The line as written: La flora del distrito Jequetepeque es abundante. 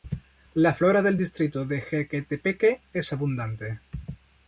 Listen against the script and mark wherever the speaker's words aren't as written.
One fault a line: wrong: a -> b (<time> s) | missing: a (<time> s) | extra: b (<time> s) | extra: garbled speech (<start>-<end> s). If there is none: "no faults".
extra: de (1.7 s)